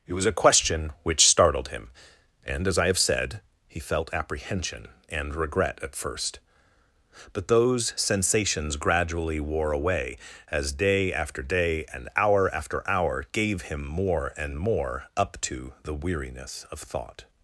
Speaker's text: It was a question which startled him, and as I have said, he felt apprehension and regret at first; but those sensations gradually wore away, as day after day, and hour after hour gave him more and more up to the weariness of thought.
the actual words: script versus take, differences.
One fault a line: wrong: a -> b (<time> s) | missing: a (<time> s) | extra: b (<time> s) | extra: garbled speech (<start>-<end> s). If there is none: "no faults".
no faults